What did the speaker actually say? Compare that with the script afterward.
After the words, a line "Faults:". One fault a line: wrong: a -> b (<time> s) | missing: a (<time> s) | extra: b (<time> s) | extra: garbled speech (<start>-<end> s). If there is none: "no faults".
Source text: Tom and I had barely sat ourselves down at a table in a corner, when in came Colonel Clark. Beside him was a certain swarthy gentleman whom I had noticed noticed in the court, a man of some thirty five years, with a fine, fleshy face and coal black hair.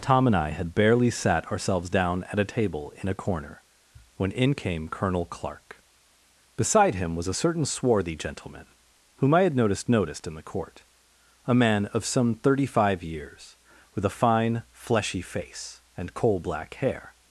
Tom and I had barely sat ourselves down at a table in a corner, when in came Colonel Clark. Beside him was a certain swarthy gentleman whom I had noticed noticed in the court, a man of some thirty five years, with a fine, fleshy face and coal black hair.
Faults:
no faults